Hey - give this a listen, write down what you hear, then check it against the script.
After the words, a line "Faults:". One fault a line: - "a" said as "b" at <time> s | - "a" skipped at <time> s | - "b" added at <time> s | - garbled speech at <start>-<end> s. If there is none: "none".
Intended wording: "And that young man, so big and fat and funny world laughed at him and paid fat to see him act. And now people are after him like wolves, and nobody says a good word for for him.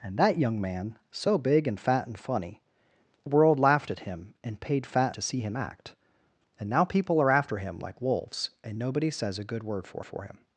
"And that young man, so big and fat and funny world laughed at him and paid fat to see him act. And now people are after him like wolves, and nobody says a good word for for him.
Faults:
none